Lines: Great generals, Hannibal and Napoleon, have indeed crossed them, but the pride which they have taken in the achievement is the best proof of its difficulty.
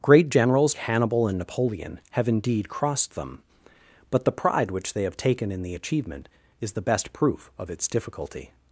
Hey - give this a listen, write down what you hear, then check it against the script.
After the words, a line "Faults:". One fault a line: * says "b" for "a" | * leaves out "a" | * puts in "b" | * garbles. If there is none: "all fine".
Great generals, Hannibal and Napoleon, have indeed crossed them, but the pride which they have taken in the achievement is the best proof of its difficulty.
Faults:
all fine